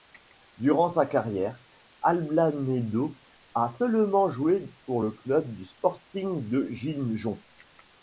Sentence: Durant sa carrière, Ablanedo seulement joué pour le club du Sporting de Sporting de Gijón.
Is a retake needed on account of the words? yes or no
yes